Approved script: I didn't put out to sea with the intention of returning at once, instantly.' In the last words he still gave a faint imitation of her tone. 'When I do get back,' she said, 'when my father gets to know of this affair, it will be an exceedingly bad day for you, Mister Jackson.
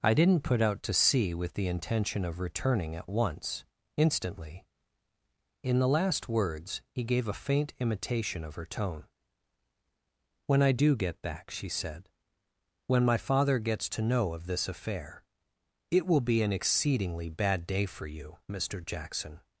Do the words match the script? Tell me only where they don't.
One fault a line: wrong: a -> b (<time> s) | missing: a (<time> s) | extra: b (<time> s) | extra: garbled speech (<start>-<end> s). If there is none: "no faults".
missing: still (7.0 s)